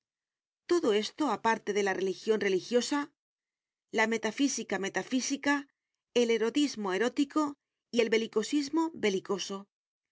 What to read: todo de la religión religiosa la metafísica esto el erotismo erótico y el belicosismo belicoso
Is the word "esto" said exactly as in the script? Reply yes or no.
no